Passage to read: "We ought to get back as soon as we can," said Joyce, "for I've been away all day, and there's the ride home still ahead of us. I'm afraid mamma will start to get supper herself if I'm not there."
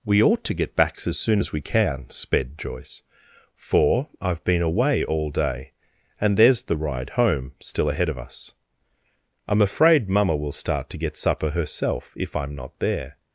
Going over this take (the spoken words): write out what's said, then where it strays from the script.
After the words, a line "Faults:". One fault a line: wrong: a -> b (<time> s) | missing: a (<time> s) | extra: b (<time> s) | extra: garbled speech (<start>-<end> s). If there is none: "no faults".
"We ought to get back as soon as we can," sped Joyce, "for I've been away all day, and there's the ride home still ahead of us. I'm afraid mamma will start to get supper herself if I'm not there."
Faults:
wrong: said -> sped (2.1 s)